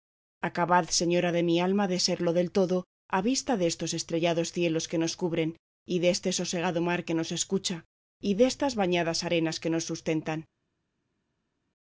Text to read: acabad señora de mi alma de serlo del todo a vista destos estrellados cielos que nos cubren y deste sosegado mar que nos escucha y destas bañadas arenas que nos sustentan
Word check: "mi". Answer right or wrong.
right